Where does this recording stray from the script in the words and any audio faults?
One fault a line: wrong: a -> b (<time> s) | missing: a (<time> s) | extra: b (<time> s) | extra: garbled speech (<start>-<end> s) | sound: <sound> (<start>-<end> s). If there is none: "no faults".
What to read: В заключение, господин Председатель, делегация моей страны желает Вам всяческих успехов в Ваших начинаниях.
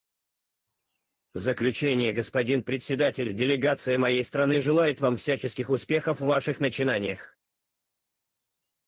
no faults